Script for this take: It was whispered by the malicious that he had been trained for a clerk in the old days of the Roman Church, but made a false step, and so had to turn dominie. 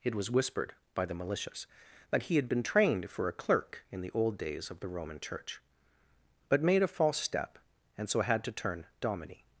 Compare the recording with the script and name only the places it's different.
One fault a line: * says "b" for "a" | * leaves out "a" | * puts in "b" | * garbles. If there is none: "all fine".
all fine